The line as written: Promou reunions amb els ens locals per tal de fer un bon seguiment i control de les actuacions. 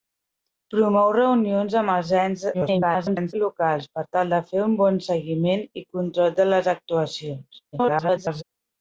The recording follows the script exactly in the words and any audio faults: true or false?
false